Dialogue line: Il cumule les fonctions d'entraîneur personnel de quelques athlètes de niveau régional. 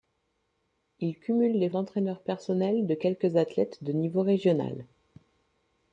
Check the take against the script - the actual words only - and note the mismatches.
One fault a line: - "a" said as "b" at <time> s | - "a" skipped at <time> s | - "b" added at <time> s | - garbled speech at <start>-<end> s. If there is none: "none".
- "fonctions" skipped at 1.7 s